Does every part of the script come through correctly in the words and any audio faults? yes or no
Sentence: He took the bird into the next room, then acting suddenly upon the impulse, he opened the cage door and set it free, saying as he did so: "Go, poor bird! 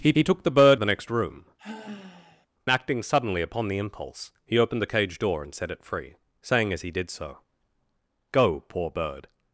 no